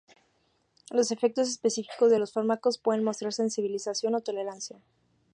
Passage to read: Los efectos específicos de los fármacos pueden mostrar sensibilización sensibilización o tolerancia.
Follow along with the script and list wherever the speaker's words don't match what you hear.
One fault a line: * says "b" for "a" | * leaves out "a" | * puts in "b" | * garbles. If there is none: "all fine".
* leaves out "sensibilización"